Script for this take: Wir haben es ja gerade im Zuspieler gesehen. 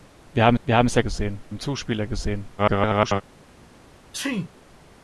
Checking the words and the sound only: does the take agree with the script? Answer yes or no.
no